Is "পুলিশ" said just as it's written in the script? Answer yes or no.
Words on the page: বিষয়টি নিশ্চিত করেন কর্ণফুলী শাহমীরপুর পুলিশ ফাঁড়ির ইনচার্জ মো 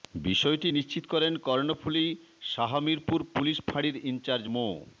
yes